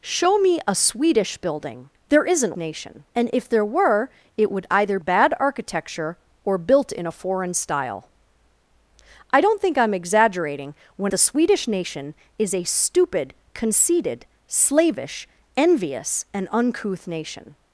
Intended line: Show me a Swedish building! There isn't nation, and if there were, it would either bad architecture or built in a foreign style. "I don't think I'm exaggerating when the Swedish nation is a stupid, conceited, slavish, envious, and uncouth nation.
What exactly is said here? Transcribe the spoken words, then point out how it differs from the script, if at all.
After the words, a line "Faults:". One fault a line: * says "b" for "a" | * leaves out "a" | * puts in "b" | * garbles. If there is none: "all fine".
Show me a Swedish building! There isn't nation, and if there were, it would either bad architecture or built in a foreign style. "I don't think I'm exaggerating when the Swedish nation is a stupid, conceited, slavish, envious, and uncouth nation.
Faults:
all fine